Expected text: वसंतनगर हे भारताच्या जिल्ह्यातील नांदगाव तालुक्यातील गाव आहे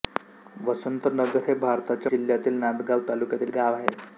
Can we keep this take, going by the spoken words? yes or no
yes